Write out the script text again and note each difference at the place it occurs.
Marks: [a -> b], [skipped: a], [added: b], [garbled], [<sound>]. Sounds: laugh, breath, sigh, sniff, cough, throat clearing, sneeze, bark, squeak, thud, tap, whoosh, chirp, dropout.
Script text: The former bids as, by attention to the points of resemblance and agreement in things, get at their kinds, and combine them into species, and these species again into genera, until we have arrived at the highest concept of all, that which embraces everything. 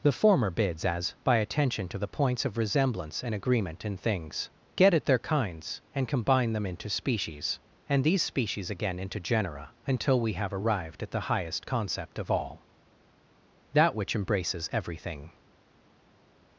The former bids as, by attention to the points of resemblance and agreement in things, get at their kinds, and combine them into species, and these species again into genera, until we have arrived at the highest concept of all, that which embraces everything.